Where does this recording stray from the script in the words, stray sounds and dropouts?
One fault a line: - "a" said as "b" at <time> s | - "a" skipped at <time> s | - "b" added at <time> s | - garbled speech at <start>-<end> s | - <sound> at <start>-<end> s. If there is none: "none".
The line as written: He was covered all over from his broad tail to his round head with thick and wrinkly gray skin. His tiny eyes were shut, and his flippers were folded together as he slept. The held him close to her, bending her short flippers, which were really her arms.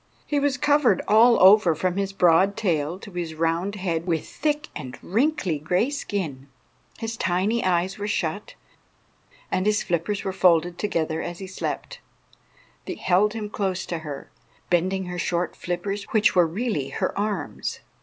none